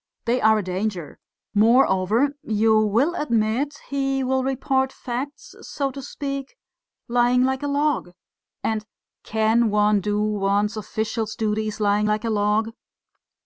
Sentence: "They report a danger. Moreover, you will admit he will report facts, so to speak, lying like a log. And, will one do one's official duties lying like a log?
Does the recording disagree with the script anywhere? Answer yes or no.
yes